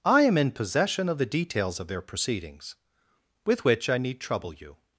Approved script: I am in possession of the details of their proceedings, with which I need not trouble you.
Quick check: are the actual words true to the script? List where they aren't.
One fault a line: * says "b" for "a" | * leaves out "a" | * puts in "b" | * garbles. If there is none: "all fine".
* leaves out "not"